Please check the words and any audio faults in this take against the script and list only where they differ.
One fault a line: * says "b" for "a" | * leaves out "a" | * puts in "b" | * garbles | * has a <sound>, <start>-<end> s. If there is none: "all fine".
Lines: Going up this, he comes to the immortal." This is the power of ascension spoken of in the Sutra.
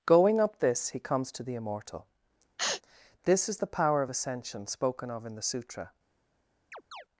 * has a sneeze, 2.6-2.8 s
* has a chirp, 6.7-7.1 s